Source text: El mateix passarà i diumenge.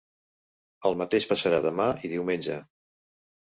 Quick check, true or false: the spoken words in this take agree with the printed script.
false